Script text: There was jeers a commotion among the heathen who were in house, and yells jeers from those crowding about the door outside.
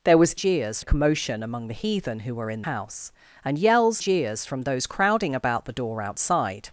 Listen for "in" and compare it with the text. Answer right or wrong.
right